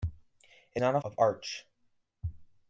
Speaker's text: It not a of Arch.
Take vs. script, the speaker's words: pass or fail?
pass